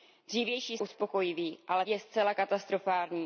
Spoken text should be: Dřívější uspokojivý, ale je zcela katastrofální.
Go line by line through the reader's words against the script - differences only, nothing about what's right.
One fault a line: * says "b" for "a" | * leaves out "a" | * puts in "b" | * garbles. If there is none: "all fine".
all fine